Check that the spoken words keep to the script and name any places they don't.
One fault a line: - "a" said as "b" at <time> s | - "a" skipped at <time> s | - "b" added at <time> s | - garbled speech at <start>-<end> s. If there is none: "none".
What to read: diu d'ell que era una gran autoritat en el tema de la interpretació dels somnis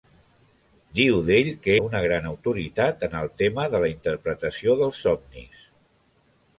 - "era" skipped at 1.8 s